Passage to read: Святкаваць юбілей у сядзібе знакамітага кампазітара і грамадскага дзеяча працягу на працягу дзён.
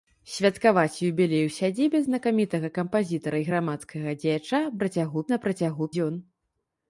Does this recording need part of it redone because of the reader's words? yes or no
no